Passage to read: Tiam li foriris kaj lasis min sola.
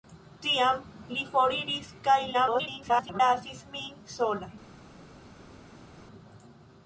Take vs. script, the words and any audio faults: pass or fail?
fail